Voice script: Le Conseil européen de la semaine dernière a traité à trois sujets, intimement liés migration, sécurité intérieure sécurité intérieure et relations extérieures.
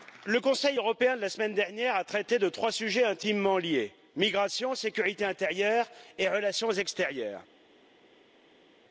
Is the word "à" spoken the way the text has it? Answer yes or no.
no